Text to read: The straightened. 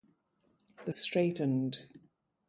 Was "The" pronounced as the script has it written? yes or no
yes